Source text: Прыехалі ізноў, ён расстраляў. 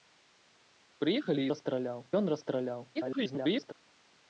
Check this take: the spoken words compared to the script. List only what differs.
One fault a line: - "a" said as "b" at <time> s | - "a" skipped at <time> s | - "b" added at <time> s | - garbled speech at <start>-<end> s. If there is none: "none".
- "ізноў" said as "расстраляў" at 1.5 s
- garbled speech at 2.9-3.7 s